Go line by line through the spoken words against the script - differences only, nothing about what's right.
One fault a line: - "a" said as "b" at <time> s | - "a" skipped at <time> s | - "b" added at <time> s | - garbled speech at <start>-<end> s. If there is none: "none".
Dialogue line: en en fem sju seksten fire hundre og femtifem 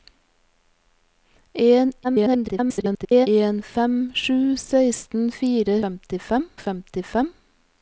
- garbled speech at 2.0-3.3 s
- "hundre" said as "femtifem" at 5.8 s